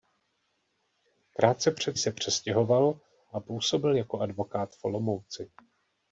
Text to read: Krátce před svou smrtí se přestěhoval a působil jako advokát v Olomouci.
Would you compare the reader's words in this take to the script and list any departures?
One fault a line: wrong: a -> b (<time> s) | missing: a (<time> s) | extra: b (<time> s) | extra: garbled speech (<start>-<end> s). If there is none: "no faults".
missing: svou smrtí (2.0 s)